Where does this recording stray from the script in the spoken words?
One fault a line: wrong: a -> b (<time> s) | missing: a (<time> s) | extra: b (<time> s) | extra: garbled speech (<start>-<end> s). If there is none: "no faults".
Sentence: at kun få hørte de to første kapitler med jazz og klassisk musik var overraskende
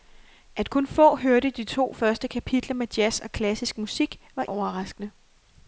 no faults